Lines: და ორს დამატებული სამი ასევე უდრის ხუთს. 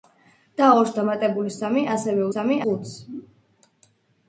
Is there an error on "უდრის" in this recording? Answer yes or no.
yes